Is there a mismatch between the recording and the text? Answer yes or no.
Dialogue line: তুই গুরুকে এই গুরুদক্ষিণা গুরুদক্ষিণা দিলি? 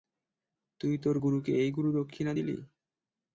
yes